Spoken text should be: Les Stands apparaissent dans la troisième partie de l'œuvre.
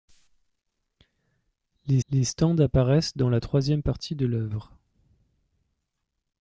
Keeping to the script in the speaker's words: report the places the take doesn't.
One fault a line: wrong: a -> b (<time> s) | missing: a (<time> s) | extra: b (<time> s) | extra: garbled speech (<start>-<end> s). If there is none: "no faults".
extra: les (2.1 s)